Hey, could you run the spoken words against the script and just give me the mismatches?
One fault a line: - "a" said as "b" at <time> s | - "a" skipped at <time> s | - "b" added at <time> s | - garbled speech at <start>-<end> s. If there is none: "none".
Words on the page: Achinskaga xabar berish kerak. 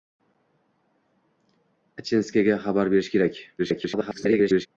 - garbled speech at 3.6-4.7 s